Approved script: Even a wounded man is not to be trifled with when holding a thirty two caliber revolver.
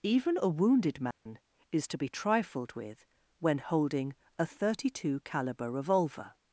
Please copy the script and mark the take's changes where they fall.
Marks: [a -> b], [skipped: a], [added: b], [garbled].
Even a wounded man is [skipped: not] to be trifled with when holding a thirty two caliber revolver.